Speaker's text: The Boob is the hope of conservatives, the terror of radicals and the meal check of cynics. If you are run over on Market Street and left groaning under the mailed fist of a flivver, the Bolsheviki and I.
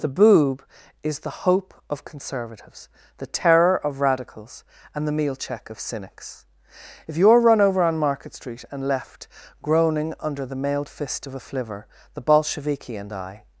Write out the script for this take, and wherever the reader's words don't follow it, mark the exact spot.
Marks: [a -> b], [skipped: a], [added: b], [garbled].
The Boob is the hope of conservatives, the terror of radicals and the meal check of cynics. If you are run over on Market Street and left groaning under the mailed fist of a flivver, the Bolsheviki and I.